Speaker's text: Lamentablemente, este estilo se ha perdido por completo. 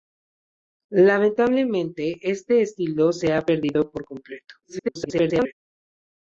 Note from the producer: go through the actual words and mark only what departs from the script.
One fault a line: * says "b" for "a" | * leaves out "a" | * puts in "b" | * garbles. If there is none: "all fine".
* garbles